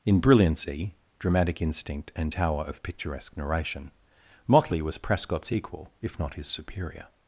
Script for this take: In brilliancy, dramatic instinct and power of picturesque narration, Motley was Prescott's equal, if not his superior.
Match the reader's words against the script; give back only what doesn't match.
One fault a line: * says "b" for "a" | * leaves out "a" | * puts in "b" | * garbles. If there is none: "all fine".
* says "tower" for "power"